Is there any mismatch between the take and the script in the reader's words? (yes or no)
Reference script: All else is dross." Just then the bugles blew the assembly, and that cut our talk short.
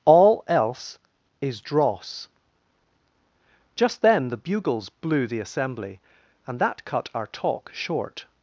no